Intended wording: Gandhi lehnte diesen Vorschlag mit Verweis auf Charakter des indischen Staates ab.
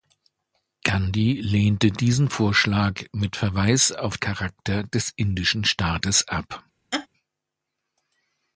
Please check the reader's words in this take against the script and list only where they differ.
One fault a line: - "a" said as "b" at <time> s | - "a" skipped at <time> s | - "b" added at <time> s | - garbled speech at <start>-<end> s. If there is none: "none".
none